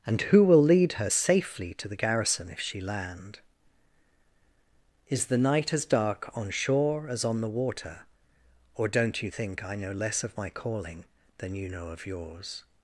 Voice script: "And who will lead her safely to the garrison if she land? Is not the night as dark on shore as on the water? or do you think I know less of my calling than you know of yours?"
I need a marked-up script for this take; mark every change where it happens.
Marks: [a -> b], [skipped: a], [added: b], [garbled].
"And who will lead her safely to the garrison if she land? Is [skipped: not] the night as dark on shore as on the water? or [do -> don't] you think I know less of my calling than you know of yours?"